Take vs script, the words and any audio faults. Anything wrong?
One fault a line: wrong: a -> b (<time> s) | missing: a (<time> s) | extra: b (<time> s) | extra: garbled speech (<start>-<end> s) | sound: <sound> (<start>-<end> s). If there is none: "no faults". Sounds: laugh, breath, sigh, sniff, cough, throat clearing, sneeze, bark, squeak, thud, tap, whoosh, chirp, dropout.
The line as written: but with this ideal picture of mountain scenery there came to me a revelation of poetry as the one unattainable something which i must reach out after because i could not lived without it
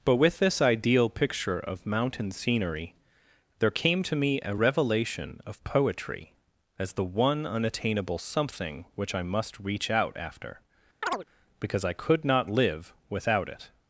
sound: chirp (11.0-11.2 s)
wrong: lived -> live (12.5 s)